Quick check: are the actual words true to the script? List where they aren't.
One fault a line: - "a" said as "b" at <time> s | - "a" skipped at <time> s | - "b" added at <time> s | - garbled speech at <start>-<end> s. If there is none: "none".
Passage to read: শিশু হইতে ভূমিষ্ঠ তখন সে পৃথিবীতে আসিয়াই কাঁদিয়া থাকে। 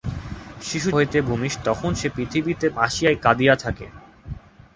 none